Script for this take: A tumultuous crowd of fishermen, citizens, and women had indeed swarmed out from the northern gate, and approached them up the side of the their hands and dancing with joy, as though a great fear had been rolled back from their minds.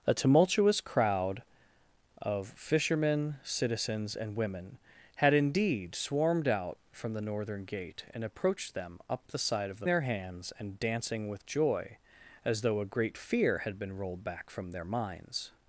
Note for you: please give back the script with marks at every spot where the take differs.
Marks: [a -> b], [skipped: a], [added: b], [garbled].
A tumultuous crowd of fishermen, citizens, and women had indeed swarmed out from the northern gate, and approached them up the side of the their hands and dancing with joy, as though a great fear had been rolled back from their minds.